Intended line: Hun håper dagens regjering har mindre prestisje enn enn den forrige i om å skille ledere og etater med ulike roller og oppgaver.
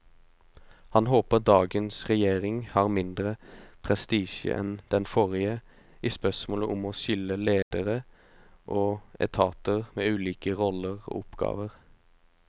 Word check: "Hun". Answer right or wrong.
wrong